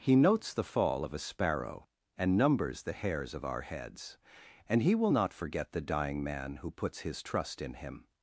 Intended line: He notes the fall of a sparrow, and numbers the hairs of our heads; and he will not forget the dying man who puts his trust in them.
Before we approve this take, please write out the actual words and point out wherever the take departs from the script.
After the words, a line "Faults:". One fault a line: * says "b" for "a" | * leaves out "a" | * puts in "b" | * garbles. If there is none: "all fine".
He notes the fall of a sparrow, and numbers the hairs of our heads; and he will not forget the dying man who puts his trust in him.
Faults:
* says "him" for "them"